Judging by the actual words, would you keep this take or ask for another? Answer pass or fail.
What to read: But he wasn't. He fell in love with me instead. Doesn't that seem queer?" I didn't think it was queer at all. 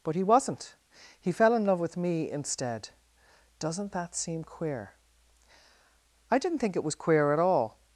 pass